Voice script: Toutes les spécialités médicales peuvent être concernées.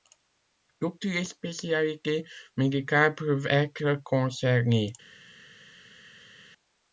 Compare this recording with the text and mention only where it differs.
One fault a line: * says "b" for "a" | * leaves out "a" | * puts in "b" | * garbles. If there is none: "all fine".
all fine